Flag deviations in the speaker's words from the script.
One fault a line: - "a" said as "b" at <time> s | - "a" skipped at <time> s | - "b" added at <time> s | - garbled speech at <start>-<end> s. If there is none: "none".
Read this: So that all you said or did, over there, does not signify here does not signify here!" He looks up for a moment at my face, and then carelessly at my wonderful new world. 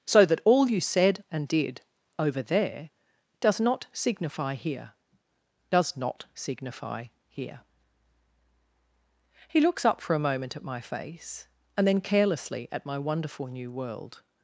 - "or" said as "and" at 1.3 s